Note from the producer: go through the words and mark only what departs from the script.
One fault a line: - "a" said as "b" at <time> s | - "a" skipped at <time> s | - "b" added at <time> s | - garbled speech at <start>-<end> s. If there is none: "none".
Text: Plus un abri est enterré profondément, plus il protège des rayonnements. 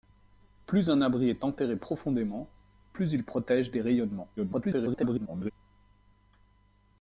- garbled speech at 4.4-5.5 s